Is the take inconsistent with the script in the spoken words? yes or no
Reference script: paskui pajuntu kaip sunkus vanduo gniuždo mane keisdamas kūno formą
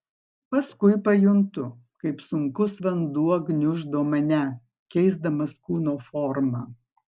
no